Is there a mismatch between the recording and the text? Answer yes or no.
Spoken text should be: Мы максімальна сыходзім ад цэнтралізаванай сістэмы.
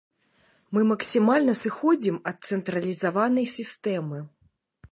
no